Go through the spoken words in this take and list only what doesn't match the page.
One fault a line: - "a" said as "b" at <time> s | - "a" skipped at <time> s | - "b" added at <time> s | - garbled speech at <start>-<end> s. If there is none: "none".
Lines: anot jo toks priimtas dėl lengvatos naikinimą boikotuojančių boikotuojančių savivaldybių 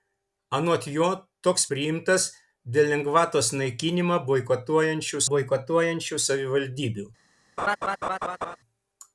none